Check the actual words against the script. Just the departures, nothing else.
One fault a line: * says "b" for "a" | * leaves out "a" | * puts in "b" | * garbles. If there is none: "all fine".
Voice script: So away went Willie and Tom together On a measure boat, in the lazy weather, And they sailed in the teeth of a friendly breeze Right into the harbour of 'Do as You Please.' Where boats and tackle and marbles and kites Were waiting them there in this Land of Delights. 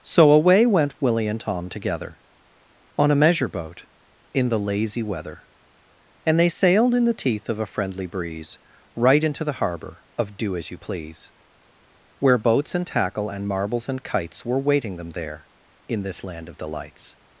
all fine